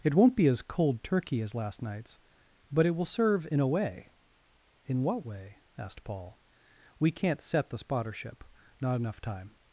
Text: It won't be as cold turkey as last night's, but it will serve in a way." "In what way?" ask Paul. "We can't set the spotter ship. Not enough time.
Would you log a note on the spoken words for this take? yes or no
yes